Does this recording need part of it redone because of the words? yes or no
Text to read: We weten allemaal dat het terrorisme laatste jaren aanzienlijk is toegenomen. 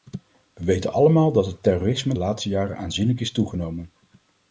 no